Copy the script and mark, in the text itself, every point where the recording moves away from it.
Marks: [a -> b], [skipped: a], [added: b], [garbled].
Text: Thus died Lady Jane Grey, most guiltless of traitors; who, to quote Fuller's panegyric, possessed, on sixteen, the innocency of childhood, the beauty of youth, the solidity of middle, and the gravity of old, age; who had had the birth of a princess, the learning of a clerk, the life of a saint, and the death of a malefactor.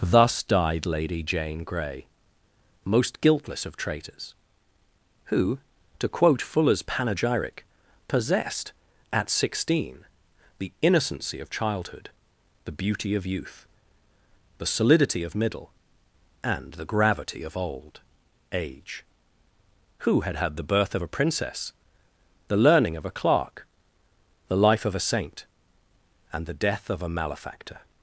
Thus died Lady Jane Grey, most guiltless of traitors; who, to quote Fuller's panegyric, possessed, [on -> at] sixteen, the innocency of childhood, the beauty of youth, the solidity of middle, and the gravity of old, age; who had had the birth of a princess, the learning of a clerk, the life of a saint, and the death of a malefactor.